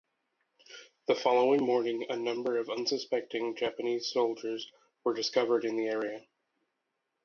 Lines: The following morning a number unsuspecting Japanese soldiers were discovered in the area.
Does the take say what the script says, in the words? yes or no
no